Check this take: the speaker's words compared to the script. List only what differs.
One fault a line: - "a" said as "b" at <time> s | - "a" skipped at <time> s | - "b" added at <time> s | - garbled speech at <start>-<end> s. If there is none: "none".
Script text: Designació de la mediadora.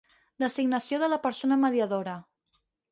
- "persona" added at 1.3 s